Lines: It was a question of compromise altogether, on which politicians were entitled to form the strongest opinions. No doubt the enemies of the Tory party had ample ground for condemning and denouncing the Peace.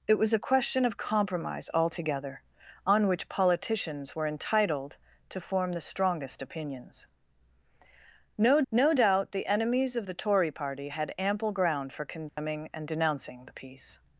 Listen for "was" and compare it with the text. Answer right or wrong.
right